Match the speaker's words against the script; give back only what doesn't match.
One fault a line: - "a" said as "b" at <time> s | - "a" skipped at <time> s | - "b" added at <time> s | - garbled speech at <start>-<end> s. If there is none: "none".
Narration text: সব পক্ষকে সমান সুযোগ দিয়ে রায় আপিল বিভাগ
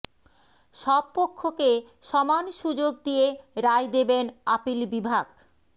- "দেবেন" added at 3.9 s